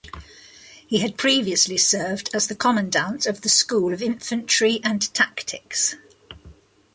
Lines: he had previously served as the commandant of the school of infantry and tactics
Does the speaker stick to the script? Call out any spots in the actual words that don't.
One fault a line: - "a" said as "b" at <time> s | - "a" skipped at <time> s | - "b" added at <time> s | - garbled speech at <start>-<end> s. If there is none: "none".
none